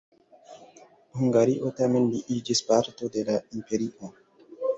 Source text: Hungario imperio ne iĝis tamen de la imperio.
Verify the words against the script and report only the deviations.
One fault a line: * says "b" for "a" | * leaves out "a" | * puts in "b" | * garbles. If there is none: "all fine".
* says "tamen" for "imperio"
* says "parto" for "tamen"